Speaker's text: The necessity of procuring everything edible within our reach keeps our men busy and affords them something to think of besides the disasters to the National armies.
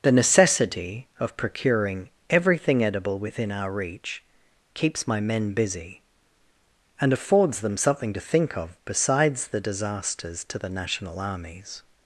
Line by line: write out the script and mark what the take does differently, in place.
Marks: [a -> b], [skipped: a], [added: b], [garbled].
The necessity of procuring everything edible within our reach keeps [our -> my] men busy and affords them something to think of besides the disasters to the National armies.